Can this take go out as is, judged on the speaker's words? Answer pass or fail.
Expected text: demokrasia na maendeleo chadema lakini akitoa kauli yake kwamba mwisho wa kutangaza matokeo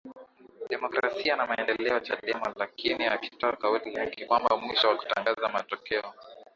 pass